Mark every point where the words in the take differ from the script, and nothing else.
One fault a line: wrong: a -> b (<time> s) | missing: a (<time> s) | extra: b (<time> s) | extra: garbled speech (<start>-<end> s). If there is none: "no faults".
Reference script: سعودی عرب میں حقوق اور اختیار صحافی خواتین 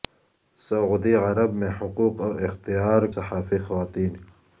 no faults